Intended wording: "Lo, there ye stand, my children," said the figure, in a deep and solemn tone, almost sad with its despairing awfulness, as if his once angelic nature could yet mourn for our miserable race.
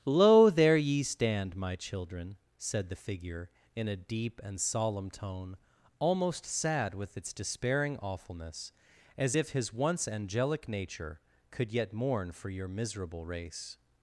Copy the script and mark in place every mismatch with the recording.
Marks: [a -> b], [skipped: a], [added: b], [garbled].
"Lo, there ye stand, my children," said the figure, in a deep and solemn tone, almost sad with its despairing awfulness, as if his once angelic nature could yet mourn for [our -> your] miserable race.